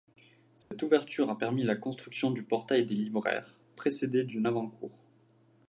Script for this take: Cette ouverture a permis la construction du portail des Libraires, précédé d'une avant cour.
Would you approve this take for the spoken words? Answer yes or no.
yes